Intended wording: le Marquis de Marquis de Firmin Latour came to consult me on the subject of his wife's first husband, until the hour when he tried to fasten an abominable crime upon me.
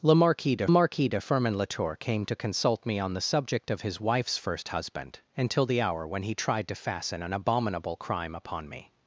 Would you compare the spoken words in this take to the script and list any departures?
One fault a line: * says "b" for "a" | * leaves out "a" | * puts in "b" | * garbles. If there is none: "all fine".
all fine